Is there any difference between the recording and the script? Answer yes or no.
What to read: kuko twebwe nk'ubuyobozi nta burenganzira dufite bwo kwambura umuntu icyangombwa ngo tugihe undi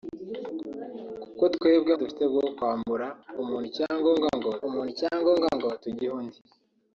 yes